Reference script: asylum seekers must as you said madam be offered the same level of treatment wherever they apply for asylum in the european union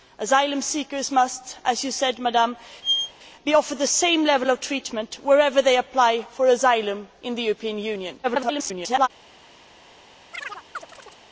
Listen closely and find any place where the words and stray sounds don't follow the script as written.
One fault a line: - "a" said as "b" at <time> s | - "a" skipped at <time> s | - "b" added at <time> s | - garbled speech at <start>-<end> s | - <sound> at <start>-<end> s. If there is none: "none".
- squeak at 2.8-3.1 s
- garbled speech at 8.2-9.1 s
- chirp at 10.3-11.2 s